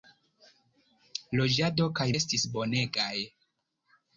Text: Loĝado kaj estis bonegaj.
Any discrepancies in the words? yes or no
no